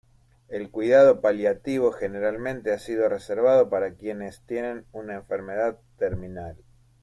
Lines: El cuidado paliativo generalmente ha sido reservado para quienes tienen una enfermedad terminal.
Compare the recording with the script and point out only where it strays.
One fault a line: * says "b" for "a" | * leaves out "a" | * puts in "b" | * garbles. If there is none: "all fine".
all fine